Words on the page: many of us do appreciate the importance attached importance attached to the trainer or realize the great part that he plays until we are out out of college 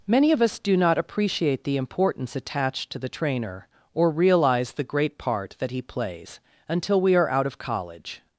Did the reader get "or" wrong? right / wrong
right